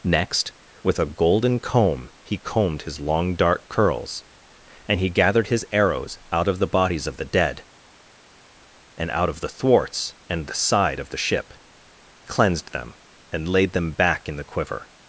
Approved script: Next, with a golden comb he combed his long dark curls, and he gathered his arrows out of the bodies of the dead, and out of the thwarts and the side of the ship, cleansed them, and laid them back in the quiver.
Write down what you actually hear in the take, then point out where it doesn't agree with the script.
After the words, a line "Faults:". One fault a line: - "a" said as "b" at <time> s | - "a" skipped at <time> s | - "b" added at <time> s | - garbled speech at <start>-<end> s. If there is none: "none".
Next, with a golden comb he combed his long dark curls, and he gathered his arrows out of the bodies of the dead, and out of the thwarts and the side of the ship, cleansed them, and laid them back in the quiver.
Faults:
none